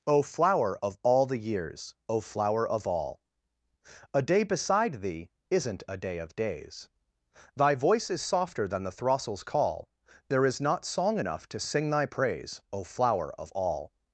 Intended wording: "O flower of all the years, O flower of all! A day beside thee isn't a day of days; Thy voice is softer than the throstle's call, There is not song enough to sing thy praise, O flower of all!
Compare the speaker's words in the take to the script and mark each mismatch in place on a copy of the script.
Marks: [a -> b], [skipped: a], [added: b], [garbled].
"O flower of all the years, O flower of all! A day beside thee isn't a day of days; Thy voice is softer than the throstle's call, There is not song enough to sing thy praise, O flower of all!